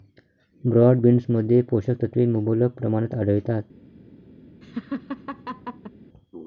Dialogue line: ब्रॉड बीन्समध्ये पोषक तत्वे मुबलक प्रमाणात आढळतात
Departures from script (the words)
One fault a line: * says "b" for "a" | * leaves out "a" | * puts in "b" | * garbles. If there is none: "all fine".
all fine